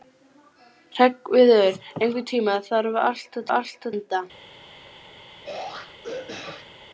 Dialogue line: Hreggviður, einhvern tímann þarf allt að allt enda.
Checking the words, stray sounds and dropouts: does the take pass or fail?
fail